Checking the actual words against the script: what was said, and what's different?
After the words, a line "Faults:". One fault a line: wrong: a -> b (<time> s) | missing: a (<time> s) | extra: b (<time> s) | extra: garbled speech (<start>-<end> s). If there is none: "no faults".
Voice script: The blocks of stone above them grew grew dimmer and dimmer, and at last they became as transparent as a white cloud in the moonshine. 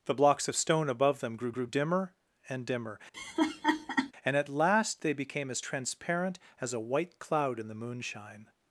The blocks of stone above them grew grew dimmer and dimmer, and at last they became as transparent as a white cloud in the moonshine.
Faults:
no faults